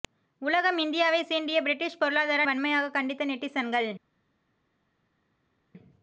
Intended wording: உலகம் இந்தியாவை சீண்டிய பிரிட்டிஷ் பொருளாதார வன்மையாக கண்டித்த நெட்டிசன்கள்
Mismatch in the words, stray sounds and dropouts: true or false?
false